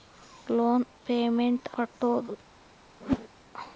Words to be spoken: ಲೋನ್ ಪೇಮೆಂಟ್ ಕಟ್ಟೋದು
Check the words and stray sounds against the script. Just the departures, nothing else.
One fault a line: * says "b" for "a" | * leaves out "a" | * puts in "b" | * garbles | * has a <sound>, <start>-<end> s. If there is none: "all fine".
* has a whoosh, 3.0-3.3 s